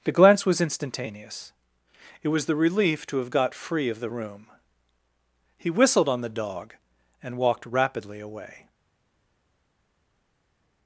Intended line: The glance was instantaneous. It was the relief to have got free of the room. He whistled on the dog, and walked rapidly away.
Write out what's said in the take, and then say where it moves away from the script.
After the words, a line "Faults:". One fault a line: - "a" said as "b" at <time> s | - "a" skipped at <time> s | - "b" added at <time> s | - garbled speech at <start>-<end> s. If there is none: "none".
The glance was instantaneous. It was the relief to have got free of the room. He whistled on the dog, and walked rapidly away.
Faults:
none